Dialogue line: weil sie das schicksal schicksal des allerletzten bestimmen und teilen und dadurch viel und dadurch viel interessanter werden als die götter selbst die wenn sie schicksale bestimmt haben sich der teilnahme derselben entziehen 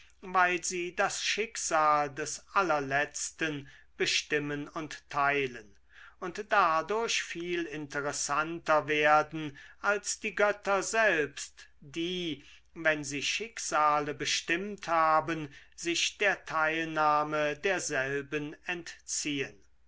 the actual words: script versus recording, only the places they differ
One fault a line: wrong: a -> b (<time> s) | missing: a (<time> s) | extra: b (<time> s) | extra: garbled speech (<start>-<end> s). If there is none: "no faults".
missing: schicksal (2.1 s)
missing: und dadurch viel (7.6 s)